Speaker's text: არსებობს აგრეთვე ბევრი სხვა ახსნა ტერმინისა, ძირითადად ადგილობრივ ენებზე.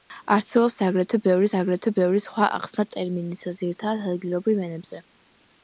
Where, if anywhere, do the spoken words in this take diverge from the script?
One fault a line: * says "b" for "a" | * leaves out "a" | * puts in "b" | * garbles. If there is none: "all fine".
* puts in "აგრეთვე ბევრი"